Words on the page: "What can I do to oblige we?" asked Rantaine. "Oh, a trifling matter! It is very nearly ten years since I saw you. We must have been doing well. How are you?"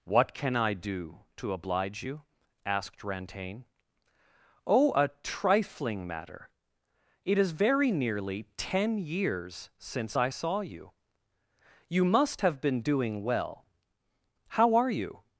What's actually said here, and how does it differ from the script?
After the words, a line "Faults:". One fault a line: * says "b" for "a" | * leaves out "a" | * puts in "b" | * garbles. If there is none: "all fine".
"What can I do to oblige you?" asked Rantaine. "Oh, a trifling matter! It is very nearly ten years since I saw you. You must have been doing well. How are you?"
Faults:
* says "you" for "we"
* says "You" for "We"